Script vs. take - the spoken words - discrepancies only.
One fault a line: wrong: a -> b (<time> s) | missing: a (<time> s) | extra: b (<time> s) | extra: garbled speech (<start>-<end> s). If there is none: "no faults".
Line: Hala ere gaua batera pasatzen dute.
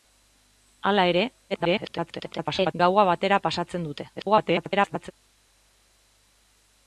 extra: garbled speech (1.5-2.7 s)
extra: garbled speech (4.1-5.1 s)